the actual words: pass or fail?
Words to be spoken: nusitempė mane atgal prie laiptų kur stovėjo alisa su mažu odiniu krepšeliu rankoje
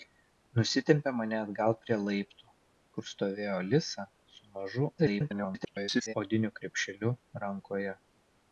fail